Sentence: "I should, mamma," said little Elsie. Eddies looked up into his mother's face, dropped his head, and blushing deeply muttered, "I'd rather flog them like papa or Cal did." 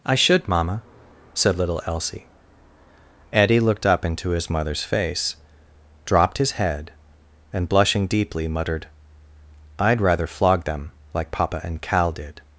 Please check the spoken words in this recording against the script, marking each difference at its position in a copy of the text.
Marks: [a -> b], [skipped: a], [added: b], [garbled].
"I should, mamma," said little Elsie. [Eddies -> Eddie] looked up into his mother's face, dropped his head, and blushing deeply muttered, "I'd rather flog them like papa [or -> and] Cal did."